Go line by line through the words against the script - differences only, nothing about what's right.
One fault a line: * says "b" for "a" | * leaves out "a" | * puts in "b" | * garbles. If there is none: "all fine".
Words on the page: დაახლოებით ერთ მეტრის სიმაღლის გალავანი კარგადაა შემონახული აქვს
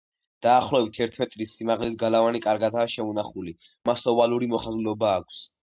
* puts in "მას ოვალური მოხაზულობა"